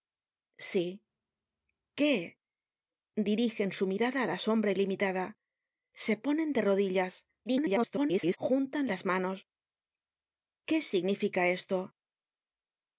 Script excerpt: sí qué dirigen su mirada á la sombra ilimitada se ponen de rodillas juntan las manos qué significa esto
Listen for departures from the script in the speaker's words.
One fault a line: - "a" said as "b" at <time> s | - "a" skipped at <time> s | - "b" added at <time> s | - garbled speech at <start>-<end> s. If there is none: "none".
- garbled speech at 7.5-8.4 s